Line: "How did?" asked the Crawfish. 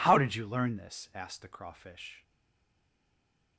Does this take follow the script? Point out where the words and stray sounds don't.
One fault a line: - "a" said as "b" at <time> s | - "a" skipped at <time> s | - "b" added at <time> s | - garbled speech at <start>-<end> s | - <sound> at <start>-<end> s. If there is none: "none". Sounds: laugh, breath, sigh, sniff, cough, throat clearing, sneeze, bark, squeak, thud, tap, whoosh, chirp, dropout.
- "you learn this" added at 0.3 s